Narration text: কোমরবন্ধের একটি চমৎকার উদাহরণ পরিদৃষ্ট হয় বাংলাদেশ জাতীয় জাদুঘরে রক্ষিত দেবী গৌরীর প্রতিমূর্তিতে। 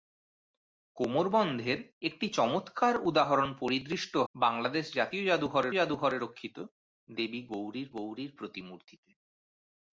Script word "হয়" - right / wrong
wrong